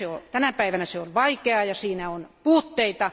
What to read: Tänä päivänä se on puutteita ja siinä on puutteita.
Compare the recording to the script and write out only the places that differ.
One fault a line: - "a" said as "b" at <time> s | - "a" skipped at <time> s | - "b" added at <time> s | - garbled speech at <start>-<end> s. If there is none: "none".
- "puutteita" said as "vaikeaa" at 1.1 s